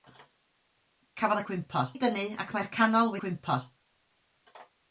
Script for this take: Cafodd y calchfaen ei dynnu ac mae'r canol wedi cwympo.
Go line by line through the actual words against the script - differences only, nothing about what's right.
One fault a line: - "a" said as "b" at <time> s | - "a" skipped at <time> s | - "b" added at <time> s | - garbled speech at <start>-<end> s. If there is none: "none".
- "calchfaen" said as "cwympo" at 1.5 s
- "wedi" skipped at 3.2 s